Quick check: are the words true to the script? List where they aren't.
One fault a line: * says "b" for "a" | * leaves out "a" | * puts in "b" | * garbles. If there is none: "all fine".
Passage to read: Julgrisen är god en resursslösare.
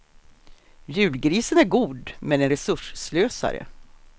* puts in "men"